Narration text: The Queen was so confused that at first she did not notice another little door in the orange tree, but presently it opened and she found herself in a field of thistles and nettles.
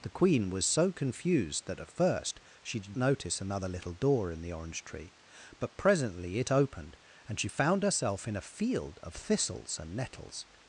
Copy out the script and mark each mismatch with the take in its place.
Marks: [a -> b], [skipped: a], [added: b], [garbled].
The Queen was so confused that at first she did [skipped: not] notice another little door in the orange tree, but presently it opened and she found herself in a field of thistles and nettles.